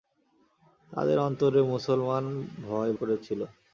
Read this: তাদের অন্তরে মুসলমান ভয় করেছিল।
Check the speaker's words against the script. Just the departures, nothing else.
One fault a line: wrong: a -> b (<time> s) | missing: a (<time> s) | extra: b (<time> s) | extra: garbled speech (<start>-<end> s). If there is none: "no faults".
no faults